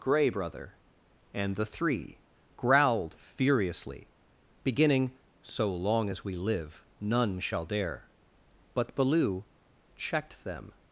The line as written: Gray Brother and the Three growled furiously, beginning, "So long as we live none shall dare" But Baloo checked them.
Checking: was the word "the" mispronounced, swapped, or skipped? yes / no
no